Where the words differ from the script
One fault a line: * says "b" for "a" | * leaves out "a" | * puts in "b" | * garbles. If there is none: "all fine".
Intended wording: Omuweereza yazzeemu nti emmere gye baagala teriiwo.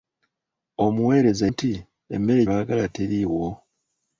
* leaves out "yazzeemu"
* leaves out "gye"